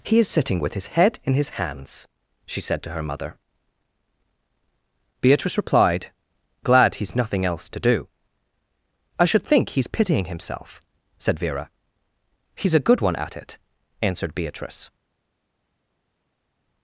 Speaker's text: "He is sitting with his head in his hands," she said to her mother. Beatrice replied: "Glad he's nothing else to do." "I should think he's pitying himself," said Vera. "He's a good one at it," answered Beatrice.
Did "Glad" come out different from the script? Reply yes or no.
no